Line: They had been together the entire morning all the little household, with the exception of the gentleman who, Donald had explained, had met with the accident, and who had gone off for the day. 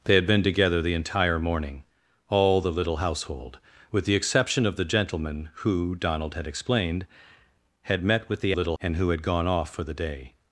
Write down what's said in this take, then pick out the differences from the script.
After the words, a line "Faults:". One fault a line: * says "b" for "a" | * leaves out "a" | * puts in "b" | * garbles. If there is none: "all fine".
They had been together the entire morning all the little household, with the exception of the gentleman who, Donald had explained, had met with the little, and who had gone off for the day.
Faults:
* says "little" for "accident"